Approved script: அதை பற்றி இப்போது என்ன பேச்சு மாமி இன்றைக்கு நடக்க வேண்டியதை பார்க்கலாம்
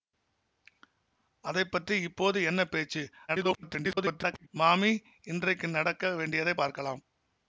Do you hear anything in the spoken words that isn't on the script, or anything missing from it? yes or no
yes